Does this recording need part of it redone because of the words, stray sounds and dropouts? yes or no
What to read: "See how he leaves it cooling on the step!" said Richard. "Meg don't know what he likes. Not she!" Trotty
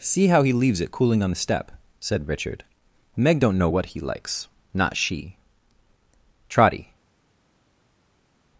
no